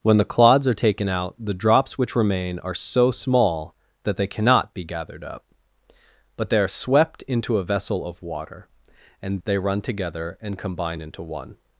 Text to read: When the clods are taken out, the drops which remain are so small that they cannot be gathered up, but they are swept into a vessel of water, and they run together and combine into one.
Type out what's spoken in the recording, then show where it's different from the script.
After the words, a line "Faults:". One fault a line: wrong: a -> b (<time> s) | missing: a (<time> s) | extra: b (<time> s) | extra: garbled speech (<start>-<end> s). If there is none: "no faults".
When the clods are taken out, the drops which remain are so small that they cannot be gathered up, but they are swept into a vessel of water, and they run together and combine into one.
Faults:
no faults